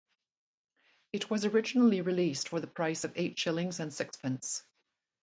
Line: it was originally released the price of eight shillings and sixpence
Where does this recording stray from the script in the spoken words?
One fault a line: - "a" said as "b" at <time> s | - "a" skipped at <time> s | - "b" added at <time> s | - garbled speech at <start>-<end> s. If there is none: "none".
- "for" added at 2.5 s